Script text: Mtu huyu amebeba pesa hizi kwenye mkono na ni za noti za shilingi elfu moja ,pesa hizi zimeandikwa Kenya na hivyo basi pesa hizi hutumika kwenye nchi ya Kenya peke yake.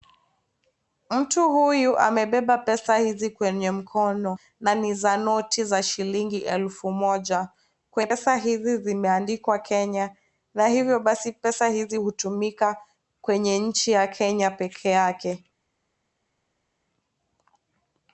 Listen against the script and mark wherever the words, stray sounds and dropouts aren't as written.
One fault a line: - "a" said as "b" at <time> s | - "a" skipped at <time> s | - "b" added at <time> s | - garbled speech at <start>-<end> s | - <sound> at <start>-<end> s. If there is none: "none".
none